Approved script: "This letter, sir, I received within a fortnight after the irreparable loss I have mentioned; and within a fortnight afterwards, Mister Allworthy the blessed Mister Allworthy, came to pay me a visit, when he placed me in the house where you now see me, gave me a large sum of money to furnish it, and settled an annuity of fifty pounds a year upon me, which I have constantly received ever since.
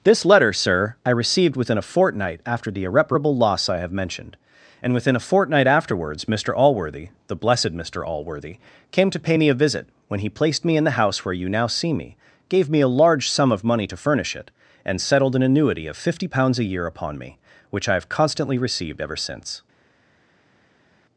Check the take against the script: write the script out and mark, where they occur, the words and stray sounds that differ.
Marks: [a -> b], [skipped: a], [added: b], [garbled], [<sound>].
"This letter, sir, I received within a fortnight after the irreparable loss I have mentioned; and within a fortnight afterwards, Mister Allworthy the blessed Mister Allworthy, came to pay me a visit, when he placed me in the house where you now see me, gave me a large sum of money to furnish it, and settled an annuity of fifty pounds a year upon me, which I have constantly received ever since.